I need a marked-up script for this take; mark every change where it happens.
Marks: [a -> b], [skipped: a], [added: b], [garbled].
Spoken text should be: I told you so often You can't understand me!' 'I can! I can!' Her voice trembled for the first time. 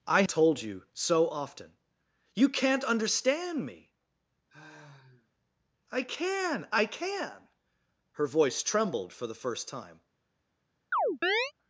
I told you so often You can't understand me!' 'I can! I can!' Her voice trembled for the first time.